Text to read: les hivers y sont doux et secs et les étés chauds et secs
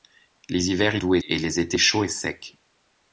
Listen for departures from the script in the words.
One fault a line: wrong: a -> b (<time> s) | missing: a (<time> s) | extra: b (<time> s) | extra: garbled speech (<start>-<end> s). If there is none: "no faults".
missing: sont (1.0 s)
missing: secs (1.2 s)